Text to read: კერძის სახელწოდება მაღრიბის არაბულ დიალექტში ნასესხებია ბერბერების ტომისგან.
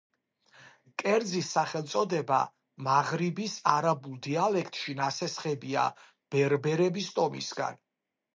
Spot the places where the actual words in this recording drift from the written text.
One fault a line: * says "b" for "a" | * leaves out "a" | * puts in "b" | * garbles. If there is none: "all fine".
all fine